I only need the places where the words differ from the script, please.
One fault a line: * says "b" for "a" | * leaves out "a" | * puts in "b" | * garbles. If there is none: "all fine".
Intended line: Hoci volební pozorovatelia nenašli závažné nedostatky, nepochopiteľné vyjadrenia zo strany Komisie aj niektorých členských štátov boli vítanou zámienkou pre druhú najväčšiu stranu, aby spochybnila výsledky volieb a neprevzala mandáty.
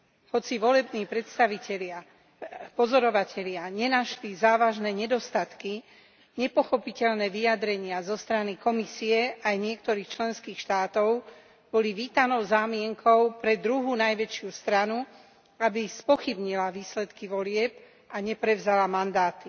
all fine